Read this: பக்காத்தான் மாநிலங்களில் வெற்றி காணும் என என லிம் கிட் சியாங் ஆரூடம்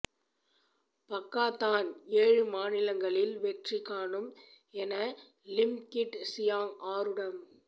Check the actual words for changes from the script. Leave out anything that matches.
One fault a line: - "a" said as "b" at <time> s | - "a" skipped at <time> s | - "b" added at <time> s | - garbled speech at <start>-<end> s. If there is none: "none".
- "ஏழு" added at 2.2 s
- "என" skipped at 4.9 s